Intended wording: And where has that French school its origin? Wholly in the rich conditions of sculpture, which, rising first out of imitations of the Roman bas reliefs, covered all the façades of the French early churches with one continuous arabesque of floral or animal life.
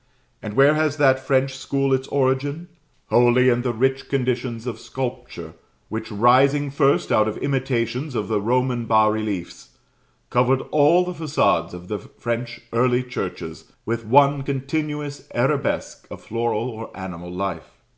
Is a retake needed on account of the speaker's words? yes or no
no